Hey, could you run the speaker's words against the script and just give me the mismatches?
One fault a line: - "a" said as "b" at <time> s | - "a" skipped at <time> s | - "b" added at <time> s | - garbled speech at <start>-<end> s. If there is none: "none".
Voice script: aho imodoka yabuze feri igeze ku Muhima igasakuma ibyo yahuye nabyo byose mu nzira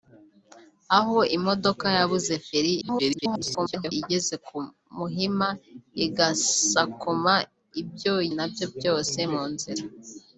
- garbled speech at 2.8-3.9 s
- "yahuye" skipped at 8.1 s